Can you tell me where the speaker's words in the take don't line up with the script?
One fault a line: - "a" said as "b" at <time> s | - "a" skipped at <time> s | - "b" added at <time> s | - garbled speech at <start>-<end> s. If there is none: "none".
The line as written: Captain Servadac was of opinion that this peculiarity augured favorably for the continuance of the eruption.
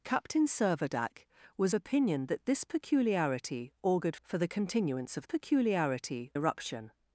- "of" skipped at 1.8 s
- "favorably" skipped at 4.2 s
- "the" said as "peculiarity" at 5.2 s